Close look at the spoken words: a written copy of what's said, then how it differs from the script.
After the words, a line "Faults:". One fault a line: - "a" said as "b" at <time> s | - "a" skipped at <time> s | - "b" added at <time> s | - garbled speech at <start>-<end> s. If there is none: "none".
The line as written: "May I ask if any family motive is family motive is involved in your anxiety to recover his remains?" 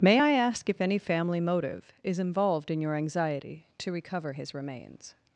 "May I ask if any family motive is involved in your anxiety to recover his remains?"
Faults:
- "family motive is" skipped at 2.2 s